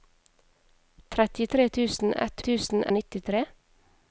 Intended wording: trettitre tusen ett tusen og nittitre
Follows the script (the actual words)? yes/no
yes